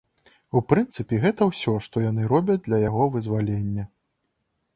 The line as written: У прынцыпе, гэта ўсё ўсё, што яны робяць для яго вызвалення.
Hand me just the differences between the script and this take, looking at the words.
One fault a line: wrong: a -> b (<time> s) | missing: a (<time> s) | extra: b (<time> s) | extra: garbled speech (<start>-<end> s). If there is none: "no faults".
missing: ўсё (1.7 s)